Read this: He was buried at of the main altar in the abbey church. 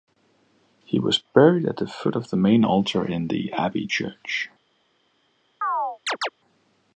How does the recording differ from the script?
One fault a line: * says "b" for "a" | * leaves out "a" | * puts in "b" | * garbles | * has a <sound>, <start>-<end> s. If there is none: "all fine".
* puts in "the foot"
* has a chirp, 5.6-6.3 s